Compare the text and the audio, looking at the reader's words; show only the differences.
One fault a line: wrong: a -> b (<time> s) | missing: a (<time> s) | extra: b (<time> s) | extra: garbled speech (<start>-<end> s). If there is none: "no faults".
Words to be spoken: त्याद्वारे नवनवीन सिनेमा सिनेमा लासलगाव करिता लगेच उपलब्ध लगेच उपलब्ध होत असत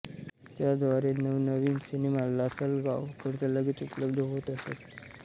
missing: सिनेमा (2.2 s)
missing: लगेच उपलब्ध (4.2 s)